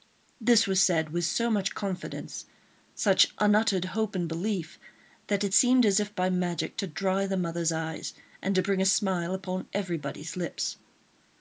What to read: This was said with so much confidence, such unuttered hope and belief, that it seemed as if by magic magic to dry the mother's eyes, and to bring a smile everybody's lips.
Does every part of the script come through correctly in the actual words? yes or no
no